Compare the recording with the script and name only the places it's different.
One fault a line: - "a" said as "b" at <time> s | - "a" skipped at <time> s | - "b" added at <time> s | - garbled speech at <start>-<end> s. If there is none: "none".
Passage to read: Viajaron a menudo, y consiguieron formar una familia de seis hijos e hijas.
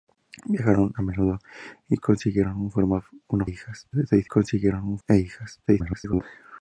- "familia" said as "hijas" at 3.4 s
- "hijos" said as "consiguieron" at 4.2 s
- garbled speech at 5.7-6.2 s